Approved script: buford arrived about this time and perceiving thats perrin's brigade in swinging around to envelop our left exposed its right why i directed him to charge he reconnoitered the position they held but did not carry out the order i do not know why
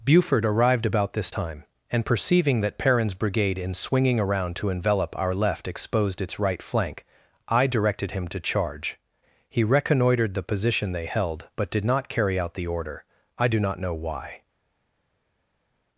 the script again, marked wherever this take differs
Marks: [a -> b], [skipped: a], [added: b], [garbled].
buford arrived about this time and perceiving [thats -> that] perrin's brigade in swinging around to envelop our left exposed its right [why -> flank] i directed him to charge he reconnoitered the position they held but did not carry out the order i do not know why